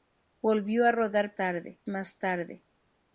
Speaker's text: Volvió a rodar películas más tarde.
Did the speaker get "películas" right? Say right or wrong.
wrong